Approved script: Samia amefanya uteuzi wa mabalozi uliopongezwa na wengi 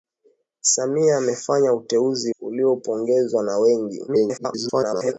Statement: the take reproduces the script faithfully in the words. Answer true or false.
false